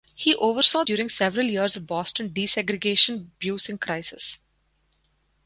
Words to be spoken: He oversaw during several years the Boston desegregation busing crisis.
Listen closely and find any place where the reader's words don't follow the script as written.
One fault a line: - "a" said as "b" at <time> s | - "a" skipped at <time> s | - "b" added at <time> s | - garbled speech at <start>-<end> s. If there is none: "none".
none